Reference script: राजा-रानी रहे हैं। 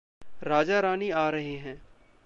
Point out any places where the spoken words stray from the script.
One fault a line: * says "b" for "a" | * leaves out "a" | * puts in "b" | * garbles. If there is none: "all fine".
* puts in "आ"